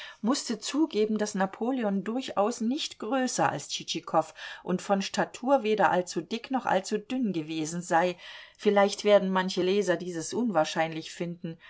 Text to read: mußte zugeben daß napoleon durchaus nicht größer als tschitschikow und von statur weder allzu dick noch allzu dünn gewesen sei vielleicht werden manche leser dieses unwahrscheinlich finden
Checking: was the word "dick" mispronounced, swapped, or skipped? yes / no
no